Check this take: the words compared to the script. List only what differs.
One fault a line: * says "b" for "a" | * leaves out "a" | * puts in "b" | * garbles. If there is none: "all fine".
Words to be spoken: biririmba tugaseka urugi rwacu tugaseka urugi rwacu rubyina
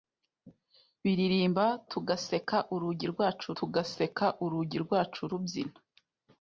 all fine